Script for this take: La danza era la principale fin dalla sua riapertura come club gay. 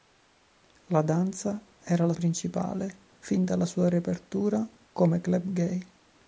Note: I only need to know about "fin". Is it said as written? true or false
true